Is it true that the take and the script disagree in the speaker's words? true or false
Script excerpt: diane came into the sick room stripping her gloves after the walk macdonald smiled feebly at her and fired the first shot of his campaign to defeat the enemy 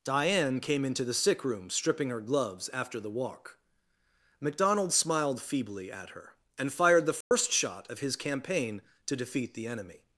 false